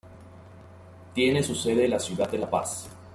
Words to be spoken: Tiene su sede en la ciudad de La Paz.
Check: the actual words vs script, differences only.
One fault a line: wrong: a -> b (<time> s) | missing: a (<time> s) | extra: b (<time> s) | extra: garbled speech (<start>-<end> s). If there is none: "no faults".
no faults